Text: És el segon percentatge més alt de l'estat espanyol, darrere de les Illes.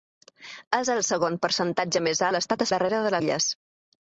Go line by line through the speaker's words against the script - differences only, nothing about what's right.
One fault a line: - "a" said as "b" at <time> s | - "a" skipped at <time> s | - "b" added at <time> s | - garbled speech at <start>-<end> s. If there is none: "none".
- "alt" skipped at 2.2 s
- "espanyol" skipped at 2.7 s
- "les" skipped at 3.1 s